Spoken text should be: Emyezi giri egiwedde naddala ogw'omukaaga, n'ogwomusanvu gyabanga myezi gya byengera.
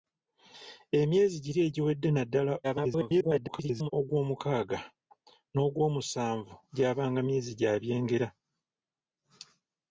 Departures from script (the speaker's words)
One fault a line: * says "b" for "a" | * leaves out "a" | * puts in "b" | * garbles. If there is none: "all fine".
* garbles